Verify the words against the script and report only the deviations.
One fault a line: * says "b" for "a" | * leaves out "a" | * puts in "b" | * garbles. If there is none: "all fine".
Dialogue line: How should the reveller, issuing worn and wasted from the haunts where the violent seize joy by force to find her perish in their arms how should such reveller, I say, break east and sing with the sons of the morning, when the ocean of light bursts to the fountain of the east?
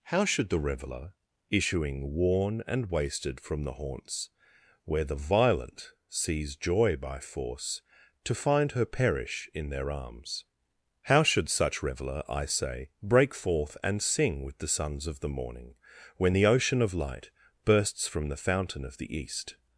* says "forth" for "east"
* says "from" for "to"